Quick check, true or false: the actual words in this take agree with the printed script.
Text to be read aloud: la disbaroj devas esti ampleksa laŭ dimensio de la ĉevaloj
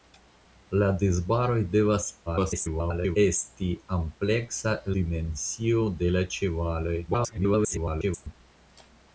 false